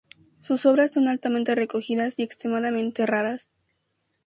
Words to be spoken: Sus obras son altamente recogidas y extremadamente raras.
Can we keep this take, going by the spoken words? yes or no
yes